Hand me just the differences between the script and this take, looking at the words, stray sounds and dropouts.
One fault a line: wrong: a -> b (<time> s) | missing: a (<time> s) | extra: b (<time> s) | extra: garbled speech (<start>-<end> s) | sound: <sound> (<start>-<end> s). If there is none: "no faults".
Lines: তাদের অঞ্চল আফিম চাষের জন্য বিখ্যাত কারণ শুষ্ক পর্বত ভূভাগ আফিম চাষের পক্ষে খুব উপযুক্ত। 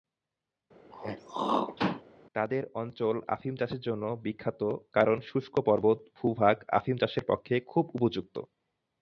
sound: throat clearing (0.9-2.0 s)